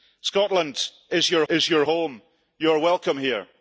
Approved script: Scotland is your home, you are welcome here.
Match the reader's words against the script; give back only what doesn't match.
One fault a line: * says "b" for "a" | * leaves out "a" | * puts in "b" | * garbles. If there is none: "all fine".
* puts in "is your"